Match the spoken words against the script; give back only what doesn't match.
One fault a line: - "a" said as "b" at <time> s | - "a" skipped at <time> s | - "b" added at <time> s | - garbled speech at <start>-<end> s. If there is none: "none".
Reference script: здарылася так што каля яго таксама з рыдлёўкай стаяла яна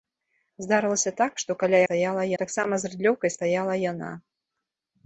- "яго" said as "стаяла" at 1.8 s